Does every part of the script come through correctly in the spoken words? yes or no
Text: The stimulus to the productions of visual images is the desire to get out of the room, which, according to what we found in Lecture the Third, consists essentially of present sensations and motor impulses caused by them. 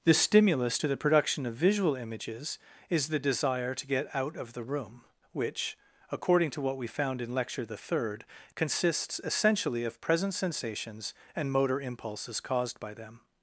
no